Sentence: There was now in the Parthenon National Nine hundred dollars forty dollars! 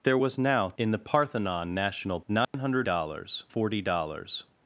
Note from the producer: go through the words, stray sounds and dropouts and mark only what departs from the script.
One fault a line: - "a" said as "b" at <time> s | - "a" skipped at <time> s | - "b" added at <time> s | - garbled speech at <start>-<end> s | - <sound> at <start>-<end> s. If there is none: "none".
- dropout at 2.4-2.5 s